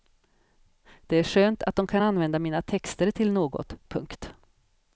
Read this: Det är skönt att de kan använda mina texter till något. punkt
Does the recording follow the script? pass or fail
pass